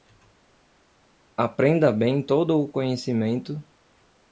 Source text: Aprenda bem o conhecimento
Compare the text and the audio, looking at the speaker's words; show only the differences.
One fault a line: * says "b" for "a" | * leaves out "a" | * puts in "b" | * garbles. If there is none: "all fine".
* puts in "todo"